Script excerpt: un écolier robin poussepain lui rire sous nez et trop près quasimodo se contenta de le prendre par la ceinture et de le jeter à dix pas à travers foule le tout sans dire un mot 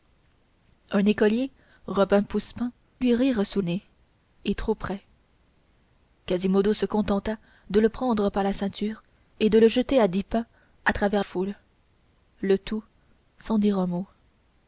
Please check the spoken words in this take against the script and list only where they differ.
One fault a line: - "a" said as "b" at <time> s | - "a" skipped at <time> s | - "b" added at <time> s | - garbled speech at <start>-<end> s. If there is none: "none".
none